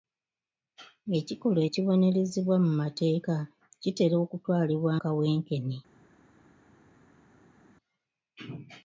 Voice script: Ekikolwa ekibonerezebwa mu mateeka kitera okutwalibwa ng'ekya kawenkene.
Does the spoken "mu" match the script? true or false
true